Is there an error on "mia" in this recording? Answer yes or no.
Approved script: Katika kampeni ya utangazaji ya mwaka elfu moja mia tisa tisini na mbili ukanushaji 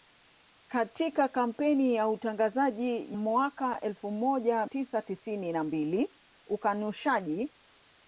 yes